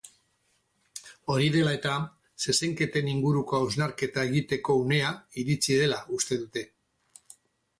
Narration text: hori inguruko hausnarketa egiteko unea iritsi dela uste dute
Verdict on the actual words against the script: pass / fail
fail